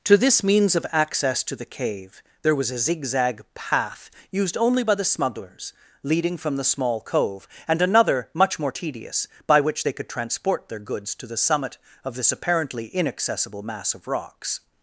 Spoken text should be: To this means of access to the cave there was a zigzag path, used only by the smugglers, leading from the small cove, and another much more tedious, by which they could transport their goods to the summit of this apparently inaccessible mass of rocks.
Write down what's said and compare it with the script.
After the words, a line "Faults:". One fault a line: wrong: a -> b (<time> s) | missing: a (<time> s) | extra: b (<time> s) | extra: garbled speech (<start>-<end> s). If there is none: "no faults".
To this means of access to the cave there was a zigzag path, used only by the smugglers, leading from the small cove, and another much more tedious, by which they could transport their goods to the summit of this apparently inaccessible mass of rocks.
Faults:
no faults